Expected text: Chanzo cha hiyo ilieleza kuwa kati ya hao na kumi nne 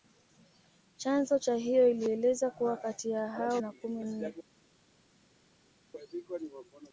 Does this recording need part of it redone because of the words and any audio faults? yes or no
no